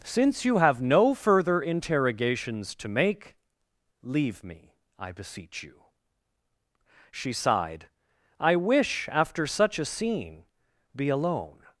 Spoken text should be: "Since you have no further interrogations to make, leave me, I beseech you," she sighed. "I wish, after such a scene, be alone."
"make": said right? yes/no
yes